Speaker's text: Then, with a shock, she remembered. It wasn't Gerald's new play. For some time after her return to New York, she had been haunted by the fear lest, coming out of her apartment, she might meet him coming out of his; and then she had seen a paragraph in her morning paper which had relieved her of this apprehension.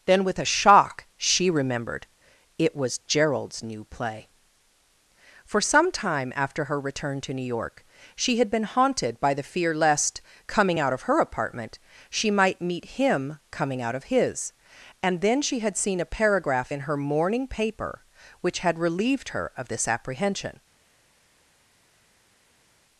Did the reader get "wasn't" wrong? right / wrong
wrong